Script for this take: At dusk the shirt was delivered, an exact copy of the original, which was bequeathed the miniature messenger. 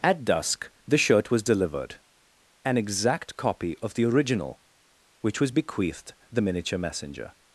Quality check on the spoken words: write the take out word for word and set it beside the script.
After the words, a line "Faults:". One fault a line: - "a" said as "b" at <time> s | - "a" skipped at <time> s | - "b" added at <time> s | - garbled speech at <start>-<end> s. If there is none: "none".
At dusk the shirt was delivered, an exact copy of the original, which was bequeathed the miniature messenger.
Faults:
none